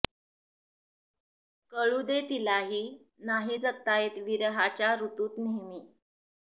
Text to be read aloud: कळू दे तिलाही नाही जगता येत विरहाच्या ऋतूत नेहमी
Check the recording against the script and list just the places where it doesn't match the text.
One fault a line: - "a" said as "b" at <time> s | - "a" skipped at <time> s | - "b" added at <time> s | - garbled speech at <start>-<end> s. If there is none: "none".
none